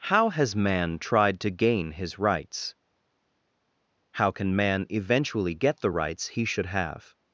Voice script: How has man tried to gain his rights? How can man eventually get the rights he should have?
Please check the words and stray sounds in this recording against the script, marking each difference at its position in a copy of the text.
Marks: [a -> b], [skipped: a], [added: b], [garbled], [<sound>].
How has man tried to gain his rights? How can man eventually get the rights he should have?